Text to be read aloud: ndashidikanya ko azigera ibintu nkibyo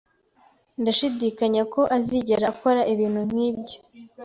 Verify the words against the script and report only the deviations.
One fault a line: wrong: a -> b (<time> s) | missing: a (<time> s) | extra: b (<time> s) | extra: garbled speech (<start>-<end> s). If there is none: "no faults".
extra: akora (2.5 s)